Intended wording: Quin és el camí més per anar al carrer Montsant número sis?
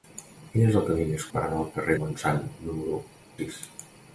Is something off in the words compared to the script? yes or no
no